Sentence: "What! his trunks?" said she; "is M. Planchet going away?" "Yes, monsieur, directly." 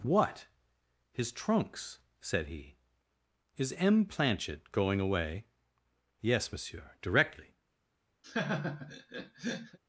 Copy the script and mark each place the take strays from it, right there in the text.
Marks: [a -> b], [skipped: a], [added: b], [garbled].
"What! his trunks?" said [she; -> he] "is M. Planchet going away?" "Yes, monsieur, directly."